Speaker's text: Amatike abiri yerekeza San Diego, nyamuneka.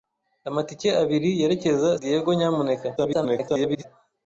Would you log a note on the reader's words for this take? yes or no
yes